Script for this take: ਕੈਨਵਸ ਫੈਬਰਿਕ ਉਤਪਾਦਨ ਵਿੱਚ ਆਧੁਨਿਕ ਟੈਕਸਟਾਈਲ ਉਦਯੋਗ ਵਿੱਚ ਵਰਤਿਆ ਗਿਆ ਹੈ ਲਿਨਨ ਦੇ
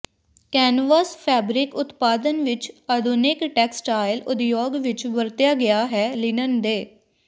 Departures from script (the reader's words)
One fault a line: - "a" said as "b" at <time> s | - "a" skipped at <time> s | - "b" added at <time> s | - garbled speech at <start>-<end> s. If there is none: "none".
none